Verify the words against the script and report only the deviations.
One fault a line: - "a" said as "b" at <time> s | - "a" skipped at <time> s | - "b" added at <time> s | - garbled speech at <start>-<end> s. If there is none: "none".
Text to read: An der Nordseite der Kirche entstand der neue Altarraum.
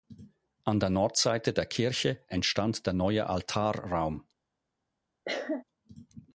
none